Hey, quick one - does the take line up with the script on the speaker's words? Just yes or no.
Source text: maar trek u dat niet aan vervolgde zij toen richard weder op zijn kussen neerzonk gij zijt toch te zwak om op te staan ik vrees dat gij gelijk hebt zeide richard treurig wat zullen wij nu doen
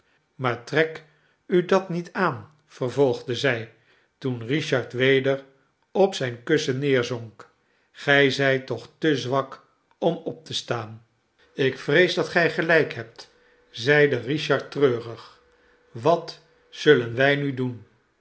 yes